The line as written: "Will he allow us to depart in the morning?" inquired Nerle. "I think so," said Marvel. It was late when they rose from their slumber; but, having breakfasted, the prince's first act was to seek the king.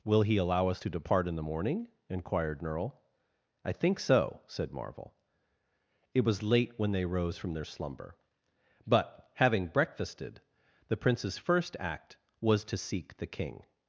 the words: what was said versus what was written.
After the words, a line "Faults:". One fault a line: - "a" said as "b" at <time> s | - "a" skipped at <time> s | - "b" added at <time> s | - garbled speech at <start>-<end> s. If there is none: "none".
"Will he allow us to depart in the morning?" inquired Nerle. "I think so," said Marvel. It was late when they rose from their slumber; but, having breakfasted, the prince's first act was to seek the king.
Faults:
none